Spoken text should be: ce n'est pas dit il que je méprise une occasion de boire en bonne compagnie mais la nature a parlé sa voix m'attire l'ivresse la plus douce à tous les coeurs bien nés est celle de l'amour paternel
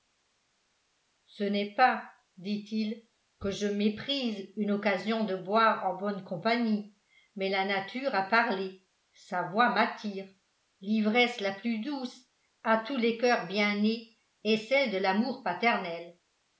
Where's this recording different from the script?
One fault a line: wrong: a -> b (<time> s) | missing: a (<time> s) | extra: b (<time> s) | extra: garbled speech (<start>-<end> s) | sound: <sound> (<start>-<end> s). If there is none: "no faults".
no faults